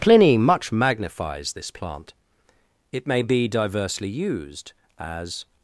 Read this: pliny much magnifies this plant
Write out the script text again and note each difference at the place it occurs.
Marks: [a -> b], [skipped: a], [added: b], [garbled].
pliny much magnifies this plant [added: it may be diversely used as]